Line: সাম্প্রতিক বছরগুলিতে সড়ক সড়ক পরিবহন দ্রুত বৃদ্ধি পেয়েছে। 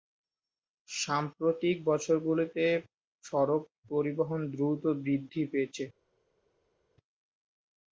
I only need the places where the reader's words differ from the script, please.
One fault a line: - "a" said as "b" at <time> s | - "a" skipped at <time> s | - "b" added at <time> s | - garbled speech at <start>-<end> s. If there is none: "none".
- "সড়ক" skipped at 3.6 s